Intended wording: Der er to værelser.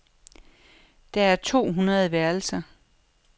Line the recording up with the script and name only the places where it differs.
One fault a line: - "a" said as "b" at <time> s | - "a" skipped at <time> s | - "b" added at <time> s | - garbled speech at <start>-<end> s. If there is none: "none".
- "hundrede" added at 1.7 s